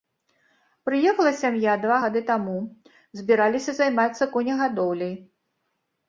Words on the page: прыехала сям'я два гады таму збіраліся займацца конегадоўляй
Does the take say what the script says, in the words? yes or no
yes